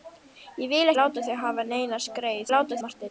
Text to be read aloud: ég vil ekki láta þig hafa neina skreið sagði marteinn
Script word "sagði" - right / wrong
wrong